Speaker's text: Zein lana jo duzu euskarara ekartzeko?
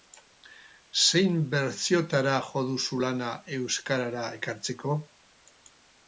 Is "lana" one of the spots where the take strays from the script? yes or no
yes